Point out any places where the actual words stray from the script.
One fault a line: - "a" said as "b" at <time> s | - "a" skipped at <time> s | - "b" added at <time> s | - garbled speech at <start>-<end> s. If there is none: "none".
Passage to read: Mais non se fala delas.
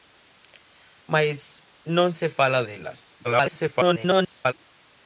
- garbled speech at 3.2-4.5 s